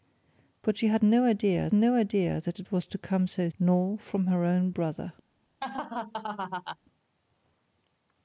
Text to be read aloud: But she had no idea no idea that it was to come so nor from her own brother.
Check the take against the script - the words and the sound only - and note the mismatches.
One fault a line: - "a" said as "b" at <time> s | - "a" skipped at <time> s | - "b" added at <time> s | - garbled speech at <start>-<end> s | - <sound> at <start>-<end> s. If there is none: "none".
- laugh at 5.6-6.8 s